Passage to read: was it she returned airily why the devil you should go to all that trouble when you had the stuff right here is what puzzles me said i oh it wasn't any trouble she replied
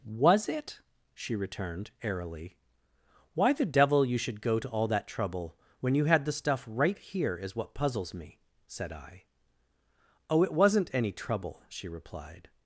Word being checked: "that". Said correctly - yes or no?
yes